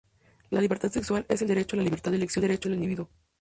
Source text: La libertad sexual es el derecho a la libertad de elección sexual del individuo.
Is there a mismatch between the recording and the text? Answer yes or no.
yes